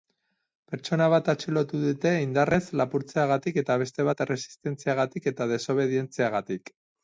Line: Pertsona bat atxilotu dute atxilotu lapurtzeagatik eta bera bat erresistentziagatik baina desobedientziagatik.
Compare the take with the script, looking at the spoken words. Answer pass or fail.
fail